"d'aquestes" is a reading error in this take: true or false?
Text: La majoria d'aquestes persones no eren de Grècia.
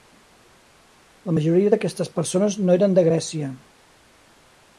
false